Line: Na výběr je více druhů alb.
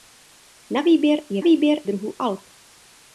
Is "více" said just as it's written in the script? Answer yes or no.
no